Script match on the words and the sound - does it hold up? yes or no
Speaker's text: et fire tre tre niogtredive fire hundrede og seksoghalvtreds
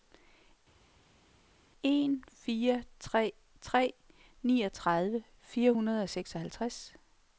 no